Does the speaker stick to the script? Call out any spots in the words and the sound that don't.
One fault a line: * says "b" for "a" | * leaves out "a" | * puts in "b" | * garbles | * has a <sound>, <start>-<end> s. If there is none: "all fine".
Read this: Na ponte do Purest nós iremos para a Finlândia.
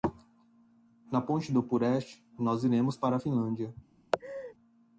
* has a laugh, 4.1-4.5 s